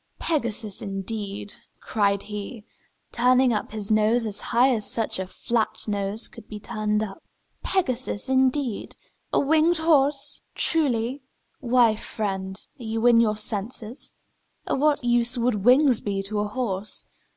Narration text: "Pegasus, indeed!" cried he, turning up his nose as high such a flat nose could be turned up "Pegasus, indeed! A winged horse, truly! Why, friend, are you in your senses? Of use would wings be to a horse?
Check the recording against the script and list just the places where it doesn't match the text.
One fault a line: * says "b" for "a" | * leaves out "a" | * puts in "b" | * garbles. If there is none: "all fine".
* puts in "as"
* puts in "what"